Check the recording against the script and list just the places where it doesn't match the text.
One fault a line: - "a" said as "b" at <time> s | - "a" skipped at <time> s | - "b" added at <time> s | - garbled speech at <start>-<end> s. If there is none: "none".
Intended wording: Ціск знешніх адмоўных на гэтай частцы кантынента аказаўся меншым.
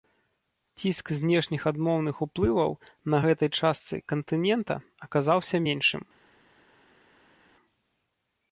- "уплываў" added at 2.3 s